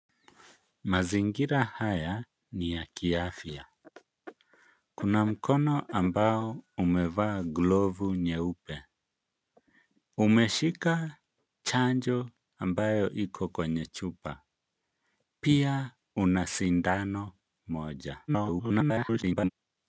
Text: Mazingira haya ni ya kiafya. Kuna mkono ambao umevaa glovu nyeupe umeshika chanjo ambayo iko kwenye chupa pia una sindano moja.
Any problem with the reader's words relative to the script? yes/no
yes